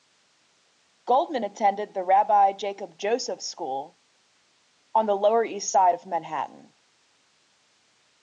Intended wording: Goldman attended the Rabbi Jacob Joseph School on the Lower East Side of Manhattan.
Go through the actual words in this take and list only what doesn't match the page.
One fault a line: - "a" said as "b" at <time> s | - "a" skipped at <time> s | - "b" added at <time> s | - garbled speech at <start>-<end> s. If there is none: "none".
none